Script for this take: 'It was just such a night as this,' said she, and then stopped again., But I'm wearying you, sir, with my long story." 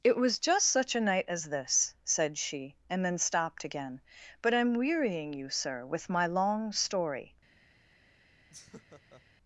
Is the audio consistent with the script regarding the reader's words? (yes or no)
yes